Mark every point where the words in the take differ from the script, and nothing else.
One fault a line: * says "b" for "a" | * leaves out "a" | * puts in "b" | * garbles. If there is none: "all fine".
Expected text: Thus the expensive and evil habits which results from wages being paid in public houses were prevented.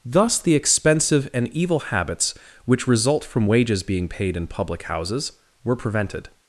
* says "result" for "results"